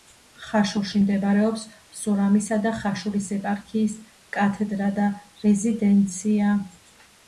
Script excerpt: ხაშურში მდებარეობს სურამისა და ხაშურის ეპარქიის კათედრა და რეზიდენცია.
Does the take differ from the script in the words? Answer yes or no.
no